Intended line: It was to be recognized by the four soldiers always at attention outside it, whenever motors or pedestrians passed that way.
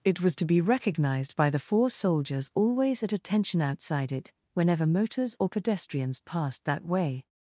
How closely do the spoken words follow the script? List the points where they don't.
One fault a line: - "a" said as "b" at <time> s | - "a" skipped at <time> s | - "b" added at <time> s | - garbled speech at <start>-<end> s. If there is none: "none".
none